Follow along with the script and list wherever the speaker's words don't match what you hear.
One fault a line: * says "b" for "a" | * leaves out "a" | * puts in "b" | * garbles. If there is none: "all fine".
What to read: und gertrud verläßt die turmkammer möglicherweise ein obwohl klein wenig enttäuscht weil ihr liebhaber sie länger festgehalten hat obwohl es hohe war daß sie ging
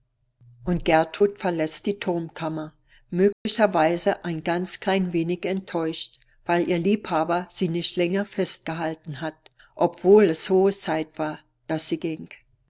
* says "ganz" for "obwohl"
* puts in "nicht"
* puts in "zeit"